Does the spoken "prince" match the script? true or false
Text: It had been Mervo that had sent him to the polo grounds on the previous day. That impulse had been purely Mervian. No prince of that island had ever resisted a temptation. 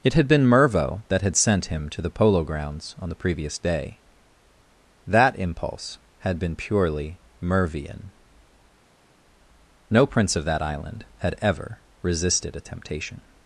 true